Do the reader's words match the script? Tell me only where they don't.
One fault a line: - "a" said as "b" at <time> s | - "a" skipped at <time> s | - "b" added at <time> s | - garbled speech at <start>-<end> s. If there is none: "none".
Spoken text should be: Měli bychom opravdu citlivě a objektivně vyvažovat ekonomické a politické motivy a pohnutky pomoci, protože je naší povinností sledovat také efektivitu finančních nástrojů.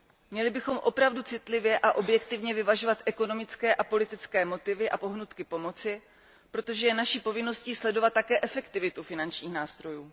none